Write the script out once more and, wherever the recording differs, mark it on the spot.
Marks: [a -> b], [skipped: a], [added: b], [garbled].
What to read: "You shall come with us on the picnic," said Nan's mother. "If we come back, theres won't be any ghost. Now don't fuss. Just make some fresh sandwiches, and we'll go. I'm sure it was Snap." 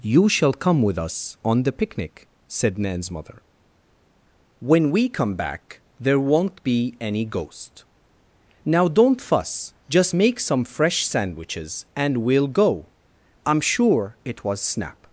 "You shall come with us on the picnic," said Nan's mother. ["If -> When] we come back, [theres -> there] won't be any ghost. Now don't fuss. Just make some fresh sandwiches, and we'll go. I'm sure it was Snap."